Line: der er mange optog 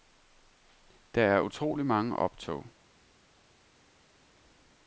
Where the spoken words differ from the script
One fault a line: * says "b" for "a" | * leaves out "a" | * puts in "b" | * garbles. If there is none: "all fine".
* puts in "utrolig"